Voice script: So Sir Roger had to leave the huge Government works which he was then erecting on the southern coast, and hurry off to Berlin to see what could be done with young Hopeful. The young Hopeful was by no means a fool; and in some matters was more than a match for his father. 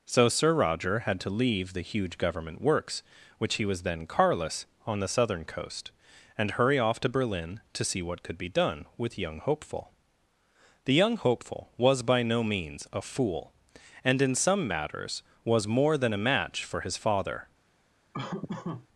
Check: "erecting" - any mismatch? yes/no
yes